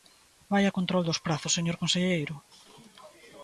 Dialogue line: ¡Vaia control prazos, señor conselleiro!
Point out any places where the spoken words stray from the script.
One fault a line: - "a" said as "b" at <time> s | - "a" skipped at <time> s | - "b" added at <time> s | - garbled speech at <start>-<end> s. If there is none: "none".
- "dos" added at 1.1 s